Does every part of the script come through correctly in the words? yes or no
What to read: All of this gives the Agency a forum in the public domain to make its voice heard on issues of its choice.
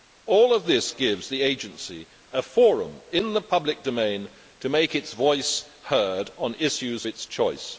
no